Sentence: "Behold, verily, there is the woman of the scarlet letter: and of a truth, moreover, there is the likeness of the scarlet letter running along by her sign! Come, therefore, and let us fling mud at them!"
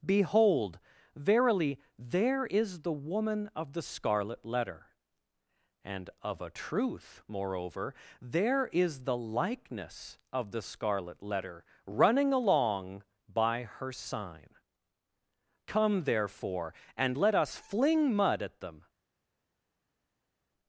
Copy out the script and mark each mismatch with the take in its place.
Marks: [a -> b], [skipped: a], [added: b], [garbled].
"Behold, verily, there is the woman of the scarlet letter: and of a truth, moreover, there is the likeness of the scarlet letter running along by her sign! Come, therefore, and let us fling mud at them!"